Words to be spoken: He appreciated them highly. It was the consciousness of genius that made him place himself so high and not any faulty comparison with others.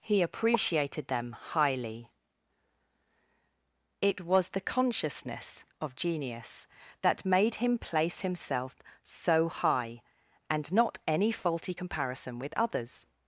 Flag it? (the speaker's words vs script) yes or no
no